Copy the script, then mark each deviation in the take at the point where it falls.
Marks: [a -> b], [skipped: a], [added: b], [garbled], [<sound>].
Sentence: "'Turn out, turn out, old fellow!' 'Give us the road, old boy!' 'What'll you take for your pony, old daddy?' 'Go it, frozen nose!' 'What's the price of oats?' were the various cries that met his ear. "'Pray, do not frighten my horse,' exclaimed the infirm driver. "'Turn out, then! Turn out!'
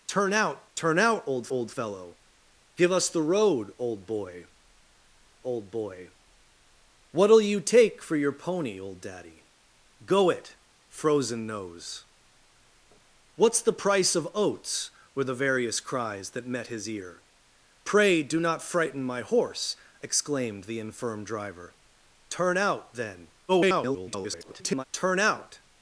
"'Turn out, turn out, old [added: old] fellow!' 'Give us the road, old boy!' [added: old boy] 'What'll you take for your pony, old daddy?' 'Go it, frozen nose!' 'What's the price of oats?' were the various cries that met his ear. "'Pray, do not frighten my horse,' exclaimed the infirm driver. "'Turn out, then! [garbled] Turn out!'